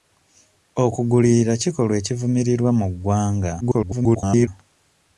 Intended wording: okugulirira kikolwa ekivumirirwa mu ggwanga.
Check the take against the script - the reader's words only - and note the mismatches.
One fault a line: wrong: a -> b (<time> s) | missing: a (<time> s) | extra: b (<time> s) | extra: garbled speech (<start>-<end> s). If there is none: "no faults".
extra: garbled speech (3.6-4.5 s)